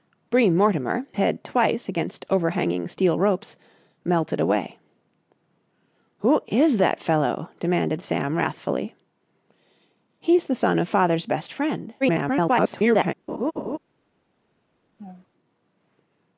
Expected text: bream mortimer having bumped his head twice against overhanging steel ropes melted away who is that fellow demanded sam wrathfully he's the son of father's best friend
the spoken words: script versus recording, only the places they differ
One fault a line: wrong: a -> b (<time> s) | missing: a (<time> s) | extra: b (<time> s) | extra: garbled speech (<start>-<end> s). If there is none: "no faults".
missing: having bumped his (1.1 s)
extra: garbled speech (12.0-13.1 s)